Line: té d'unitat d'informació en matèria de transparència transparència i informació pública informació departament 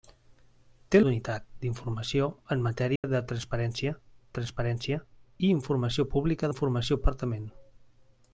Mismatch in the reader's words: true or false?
false